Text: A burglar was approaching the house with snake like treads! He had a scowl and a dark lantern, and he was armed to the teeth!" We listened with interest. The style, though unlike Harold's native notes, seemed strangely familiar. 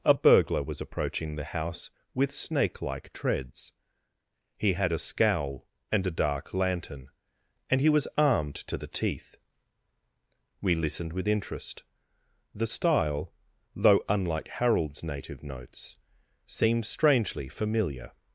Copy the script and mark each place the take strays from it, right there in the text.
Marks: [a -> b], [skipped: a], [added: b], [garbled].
A burglar was approaching the house with snake like treads! He had a scowl and a dark lantern, and he was armed to the teeth!" We listened with interest. The style, though unlike Harold's native notes, seemed strangely familiar.